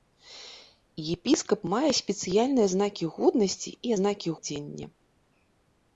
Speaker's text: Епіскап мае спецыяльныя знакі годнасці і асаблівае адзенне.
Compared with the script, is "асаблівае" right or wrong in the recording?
wrong